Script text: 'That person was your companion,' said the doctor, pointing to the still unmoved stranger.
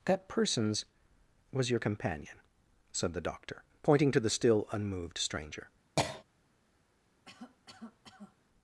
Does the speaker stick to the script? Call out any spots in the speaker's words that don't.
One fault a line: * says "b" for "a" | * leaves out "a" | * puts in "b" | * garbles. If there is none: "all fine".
* says "persons" for "person"